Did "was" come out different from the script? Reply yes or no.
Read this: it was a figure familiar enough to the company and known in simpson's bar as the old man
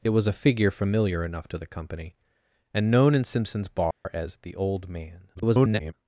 no